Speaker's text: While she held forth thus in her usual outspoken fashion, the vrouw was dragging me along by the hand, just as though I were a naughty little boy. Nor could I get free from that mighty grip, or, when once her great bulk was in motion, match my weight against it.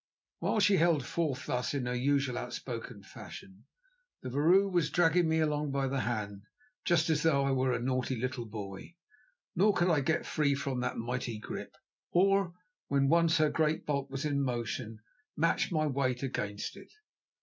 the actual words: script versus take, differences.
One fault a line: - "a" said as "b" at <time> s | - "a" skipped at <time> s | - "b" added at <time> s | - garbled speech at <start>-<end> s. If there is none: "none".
none